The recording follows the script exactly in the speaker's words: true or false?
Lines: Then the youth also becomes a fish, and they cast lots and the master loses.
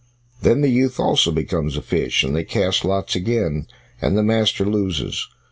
false